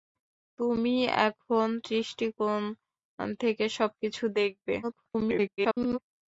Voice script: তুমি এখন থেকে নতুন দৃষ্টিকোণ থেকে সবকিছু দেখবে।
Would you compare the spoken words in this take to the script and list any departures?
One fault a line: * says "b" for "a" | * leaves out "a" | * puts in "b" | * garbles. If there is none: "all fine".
* leaves out "থেকে নতুন"
* garbles